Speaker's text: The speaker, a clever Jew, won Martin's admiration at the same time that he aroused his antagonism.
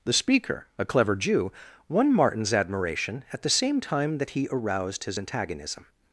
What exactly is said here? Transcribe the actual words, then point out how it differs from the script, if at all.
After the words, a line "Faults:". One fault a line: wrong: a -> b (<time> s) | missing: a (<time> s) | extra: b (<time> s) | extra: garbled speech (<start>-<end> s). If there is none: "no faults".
The speaker, a clever Jew, won Martin's admiration at the same time that he aroused his antagonism.
Faults:
no faults